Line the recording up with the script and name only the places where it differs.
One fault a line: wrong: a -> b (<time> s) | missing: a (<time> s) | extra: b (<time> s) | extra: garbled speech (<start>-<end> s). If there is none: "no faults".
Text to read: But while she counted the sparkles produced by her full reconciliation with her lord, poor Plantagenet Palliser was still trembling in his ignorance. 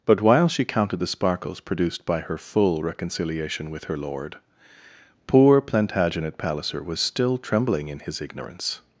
no faults